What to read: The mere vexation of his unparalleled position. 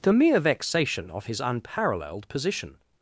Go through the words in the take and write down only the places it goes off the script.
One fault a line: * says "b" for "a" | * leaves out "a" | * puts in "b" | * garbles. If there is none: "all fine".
all fine